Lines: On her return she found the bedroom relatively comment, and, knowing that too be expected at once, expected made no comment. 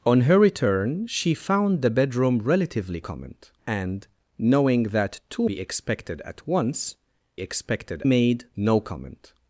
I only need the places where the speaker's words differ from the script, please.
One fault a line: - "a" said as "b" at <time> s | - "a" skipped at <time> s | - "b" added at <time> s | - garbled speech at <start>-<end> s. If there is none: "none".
none